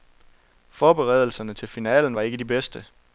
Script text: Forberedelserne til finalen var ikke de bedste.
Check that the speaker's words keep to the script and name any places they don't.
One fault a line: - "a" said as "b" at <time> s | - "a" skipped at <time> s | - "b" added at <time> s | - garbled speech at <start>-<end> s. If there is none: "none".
none